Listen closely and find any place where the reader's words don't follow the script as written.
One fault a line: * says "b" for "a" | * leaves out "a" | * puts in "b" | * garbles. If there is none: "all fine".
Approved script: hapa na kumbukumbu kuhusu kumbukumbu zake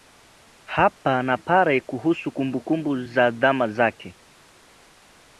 * says "pale" for "kumbukumbu"
* puts in "za zama"